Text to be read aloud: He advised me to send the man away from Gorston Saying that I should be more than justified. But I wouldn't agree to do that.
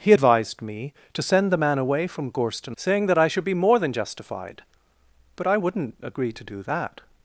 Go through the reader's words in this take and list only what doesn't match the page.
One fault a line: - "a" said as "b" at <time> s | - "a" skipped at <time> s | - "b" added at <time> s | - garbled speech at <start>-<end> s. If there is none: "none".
none